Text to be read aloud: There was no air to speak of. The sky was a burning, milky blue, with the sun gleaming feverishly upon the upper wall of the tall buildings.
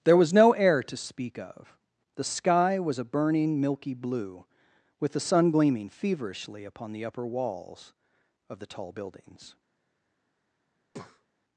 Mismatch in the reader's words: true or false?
true